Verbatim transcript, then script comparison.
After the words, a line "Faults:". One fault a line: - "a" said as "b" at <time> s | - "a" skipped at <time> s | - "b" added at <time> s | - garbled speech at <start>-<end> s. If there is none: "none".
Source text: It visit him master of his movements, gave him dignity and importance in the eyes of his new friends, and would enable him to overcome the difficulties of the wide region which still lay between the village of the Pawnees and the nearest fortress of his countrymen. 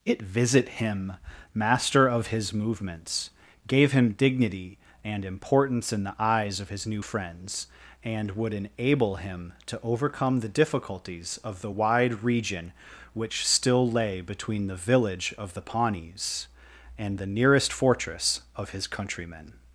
It visit him master of his movements, gave him dignity and importance in the eyes of his new friends, and would enable him to overcome the difficulties of the wide region which still lay between the village of the Pawnees and the nearest fortress of his countrymen.
Faults:
none